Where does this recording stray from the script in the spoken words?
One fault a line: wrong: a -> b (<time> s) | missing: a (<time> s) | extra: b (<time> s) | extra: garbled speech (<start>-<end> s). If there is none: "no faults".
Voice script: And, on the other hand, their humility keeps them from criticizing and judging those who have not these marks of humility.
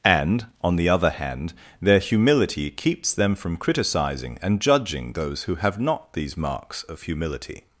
no faults